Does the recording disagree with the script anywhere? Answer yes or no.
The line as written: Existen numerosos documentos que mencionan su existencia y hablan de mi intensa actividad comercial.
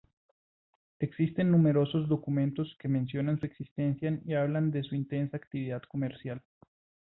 yes